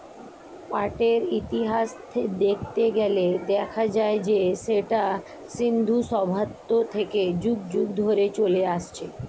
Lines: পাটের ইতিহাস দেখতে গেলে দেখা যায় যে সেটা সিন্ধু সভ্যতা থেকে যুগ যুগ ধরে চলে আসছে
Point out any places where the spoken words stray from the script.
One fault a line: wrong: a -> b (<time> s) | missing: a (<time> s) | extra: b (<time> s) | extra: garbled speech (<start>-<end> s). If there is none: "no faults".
no faults